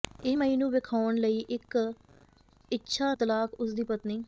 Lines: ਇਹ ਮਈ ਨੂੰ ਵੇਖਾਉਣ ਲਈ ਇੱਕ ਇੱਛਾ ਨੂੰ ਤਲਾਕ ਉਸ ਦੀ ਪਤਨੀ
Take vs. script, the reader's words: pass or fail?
fail